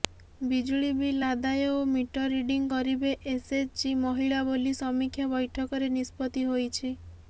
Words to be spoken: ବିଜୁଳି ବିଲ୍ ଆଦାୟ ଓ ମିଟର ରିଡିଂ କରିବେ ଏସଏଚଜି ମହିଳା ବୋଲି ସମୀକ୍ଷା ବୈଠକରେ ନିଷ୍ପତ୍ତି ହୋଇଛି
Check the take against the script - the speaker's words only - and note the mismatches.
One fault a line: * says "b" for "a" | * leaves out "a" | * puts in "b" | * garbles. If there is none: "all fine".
all fine